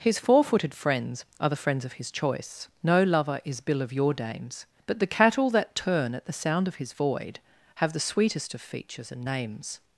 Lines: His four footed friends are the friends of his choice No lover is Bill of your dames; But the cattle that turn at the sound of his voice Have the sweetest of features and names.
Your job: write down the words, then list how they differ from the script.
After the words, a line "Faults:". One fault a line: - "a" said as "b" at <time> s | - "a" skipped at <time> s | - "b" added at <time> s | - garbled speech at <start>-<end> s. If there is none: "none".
His four footed friends are the friends of his choice No lover is Bill of your dames; But the cattle that turn at the sound of his void Have the sweetest of features and names.
Faults:
- "voice" said as "void" at 6.9 s